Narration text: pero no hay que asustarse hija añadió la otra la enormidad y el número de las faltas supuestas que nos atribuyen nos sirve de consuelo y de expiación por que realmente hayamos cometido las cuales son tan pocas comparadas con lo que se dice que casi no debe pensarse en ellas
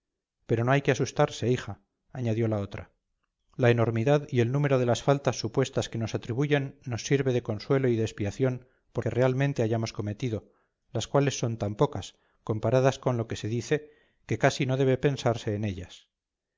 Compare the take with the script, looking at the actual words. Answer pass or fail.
pass